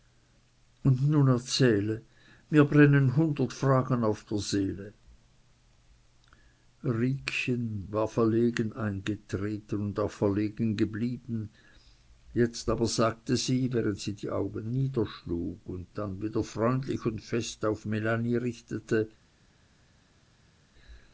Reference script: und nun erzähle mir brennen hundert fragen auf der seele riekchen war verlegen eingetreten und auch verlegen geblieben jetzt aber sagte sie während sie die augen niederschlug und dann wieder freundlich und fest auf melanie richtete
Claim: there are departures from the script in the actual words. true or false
false